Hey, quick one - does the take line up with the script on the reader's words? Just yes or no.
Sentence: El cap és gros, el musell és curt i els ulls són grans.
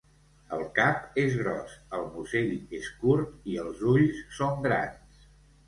yes